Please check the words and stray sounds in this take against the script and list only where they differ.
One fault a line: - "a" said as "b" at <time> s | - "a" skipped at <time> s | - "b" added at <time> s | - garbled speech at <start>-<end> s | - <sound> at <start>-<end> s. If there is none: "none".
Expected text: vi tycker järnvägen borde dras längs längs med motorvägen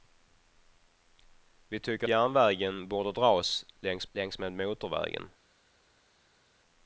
none